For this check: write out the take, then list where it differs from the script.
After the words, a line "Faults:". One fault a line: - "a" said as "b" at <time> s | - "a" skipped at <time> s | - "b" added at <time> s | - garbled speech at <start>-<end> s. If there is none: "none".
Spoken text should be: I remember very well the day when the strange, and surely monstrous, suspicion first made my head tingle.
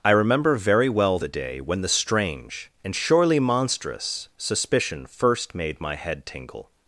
I remember very well the day when the strange, and surely monstrous, suspicion first made my head tingle.
Faults:
none